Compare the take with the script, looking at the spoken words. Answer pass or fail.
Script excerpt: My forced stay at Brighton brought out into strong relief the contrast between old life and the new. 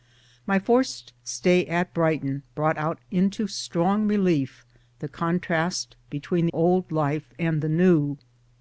pass